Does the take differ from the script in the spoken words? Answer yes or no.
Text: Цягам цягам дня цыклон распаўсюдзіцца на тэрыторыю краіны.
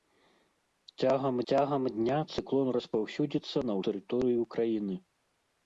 no